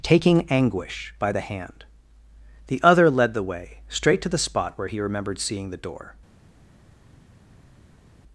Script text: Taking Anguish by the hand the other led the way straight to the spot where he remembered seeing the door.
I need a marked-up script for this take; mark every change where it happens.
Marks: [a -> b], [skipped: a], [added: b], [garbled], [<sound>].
Taking Anguish by the hand the other led the way straight to the spot where he remembered seeing the door.